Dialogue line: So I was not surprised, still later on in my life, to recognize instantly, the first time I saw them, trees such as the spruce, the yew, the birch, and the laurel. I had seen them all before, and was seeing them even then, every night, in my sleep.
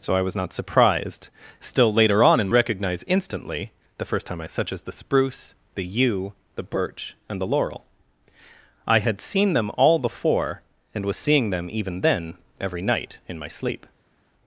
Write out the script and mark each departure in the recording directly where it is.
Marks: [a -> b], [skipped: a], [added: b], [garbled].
So I was not surprised, still later on in [skipped: my life, to] recognize instantly, the first time I [skipped: saw them, trees] such as the spruce, the yew, the birch, and the laurel. I had seen them all before, and was seeing them even then, every night, in my sleep.